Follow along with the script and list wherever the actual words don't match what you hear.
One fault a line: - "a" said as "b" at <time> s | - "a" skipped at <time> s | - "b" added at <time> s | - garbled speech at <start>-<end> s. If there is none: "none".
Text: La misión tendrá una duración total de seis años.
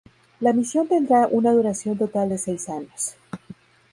none